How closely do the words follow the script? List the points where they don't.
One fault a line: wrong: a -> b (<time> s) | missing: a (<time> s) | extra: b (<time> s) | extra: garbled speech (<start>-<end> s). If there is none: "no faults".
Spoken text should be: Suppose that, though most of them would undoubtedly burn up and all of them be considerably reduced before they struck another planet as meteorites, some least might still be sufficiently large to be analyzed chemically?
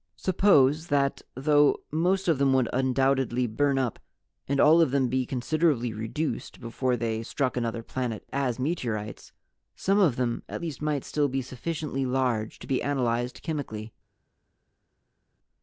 extra: of them at (10.0 s)